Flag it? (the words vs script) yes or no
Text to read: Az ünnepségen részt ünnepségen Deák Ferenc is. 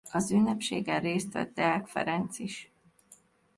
yes